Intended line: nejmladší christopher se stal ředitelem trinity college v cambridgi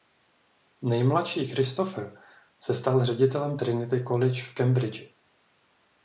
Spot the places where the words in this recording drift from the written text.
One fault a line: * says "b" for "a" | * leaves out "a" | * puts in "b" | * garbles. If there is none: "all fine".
all fine